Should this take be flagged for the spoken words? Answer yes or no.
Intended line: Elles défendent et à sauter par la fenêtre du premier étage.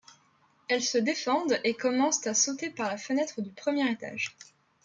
yes